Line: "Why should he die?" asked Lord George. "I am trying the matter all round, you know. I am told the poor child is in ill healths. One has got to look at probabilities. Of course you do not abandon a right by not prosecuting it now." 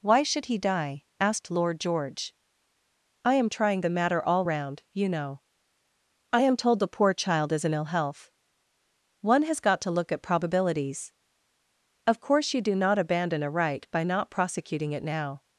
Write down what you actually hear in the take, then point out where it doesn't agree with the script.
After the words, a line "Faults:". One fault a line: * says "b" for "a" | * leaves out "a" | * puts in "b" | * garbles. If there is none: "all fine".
"Why should he die?" asked Lord George. "I am trying the matter all round, you know. I am told the poor child is in ill health. One has got to look at probabilities. Of course you do not abandon a right by not prosecuting it now."
Faults:
* says "health" for "healths"